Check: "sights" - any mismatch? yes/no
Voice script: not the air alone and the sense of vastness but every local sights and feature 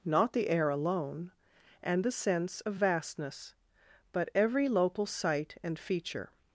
yes